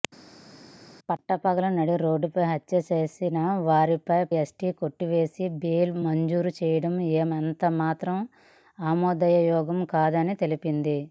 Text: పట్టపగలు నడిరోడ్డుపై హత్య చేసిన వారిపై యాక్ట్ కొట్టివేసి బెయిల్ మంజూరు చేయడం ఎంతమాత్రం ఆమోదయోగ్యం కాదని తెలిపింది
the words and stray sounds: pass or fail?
pass